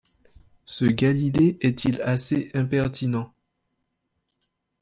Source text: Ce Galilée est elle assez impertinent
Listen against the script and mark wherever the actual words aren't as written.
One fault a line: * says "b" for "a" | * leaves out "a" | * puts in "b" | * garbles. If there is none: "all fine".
* says "il" for "elle"